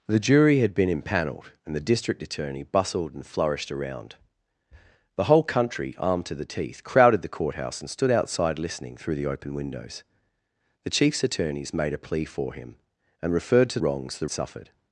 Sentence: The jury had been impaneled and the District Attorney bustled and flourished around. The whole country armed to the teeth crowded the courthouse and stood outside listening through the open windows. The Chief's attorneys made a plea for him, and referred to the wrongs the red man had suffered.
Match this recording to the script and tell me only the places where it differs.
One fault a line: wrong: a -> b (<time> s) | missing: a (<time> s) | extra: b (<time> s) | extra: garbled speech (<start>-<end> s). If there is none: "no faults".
missing: the (13.8 s)
missing: red man had (14.3 s)